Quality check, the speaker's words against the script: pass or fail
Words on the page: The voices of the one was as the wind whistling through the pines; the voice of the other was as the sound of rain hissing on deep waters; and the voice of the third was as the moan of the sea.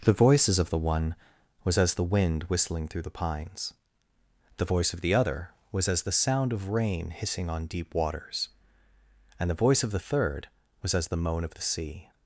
pass